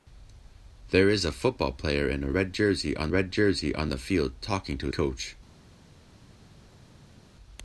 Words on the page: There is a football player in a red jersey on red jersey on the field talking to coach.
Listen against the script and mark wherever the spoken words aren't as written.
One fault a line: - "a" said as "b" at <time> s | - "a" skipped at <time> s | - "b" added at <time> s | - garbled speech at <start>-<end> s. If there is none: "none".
none